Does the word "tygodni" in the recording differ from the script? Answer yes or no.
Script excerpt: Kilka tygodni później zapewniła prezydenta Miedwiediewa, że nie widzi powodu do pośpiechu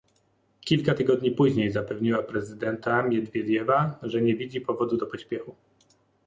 no